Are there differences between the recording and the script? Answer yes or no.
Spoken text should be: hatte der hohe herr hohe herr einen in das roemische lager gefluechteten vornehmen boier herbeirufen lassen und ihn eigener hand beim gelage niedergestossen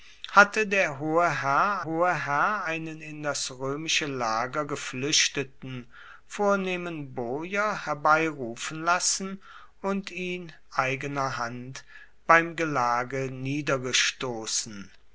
no